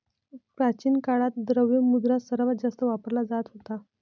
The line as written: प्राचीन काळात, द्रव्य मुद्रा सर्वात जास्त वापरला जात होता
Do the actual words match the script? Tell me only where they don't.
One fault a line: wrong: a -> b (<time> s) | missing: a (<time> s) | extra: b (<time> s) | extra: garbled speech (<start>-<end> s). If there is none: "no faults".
no faults